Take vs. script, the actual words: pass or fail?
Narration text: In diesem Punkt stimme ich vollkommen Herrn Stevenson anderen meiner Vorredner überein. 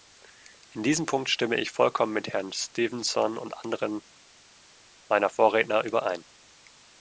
fail